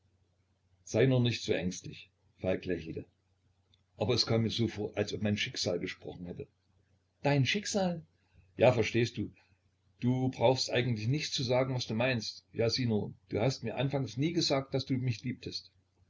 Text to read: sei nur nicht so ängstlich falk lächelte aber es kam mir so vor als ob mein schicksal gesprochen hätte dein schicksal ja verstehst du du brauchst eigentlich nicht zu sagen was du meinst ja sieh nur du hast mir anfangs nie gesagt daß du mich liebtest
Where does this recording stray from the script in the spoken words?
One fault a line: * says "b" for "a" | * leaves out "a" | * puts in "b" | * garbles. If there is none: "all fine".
all fine